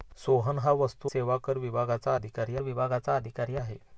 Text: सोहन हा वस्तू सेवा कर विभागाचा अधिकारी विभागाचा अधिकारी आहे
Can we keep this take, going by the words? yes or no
yes